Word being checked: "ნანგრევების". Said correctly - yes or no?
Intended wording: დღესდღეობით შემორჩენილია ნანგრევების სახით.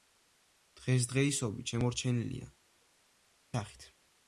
no